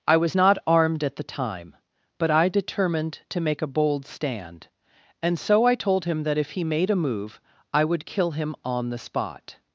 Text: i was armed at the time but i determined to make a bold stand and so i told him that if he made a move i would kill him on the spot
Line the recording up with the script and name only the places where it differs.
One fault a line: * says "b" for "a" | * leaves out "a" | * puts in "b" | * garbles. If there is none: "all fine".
* puts in "not"